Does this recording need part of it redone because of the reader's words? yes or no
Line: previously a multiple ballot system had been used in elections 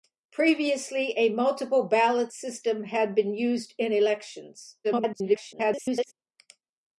yes